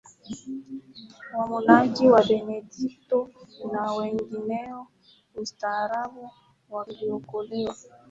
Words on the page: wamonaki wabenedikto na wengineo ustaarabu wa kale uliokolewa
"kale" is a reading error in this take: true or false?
true